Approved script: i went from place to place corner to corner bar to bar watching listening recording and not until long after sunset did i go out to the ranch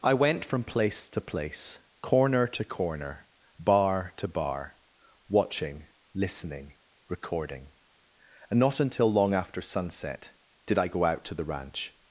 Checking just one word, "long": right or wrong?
right